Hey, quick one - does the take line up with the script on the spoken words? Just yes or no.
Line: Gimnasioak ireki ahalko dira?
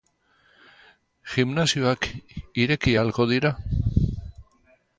yes